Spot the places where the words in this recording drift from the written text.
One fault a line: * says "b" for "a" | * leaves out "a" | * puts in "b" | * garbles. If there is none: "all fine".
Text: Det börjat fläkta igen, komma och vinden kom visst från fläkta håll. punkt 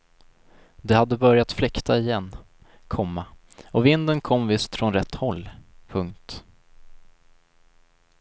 * puts in "hade"
* says "rätt" for "fläkta"